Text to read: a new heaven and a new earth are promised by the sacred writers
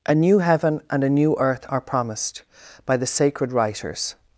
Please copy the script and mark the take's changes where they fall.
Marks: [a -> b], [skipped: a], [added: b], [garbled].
a new heaven and a new earth are promised by the sacred writers